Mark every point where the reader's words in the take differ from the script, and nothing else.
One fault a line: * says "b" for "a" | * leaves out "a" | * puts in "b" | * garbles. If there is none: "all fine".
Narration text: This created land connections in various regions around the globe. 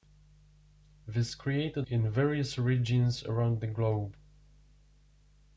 * leaves out "land connections"